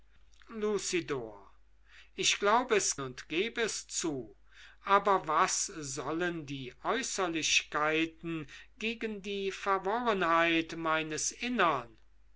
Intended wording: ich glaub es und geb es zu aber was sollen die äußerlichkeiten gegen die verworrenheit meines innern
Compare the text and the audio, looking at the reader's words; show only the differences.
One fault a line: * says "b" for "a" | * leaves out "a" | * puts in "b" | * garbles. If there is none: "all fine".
all fine